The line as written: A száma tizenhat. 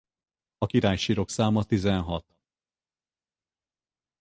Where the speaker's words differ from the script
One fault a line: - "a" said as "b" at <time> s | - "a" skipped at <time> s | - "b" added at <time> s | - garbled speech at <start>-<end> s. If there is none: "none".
- "királysírok" added at 0.6 s